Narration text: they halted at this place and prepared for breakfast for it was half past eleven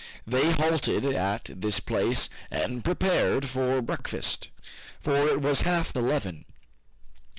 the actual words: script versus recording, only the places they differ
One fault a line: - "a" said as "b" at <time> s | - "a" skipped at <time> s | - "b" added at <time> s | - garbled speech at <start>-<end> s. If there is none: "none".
- "past" skipped at 6.0 s